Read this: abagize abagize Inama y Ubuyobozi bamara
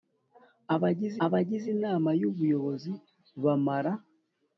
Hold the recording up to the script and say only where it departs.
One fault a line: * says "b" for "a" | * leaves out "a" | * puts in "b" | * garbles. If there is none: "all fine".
all fine